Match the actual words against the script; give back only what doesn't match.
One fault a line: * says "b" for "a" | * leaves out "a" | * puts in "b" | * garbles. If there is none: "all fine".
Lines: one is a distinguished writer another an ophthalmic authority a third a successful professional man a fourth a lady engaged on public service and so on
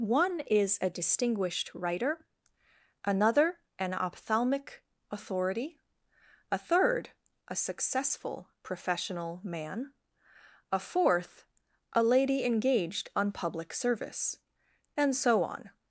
all fine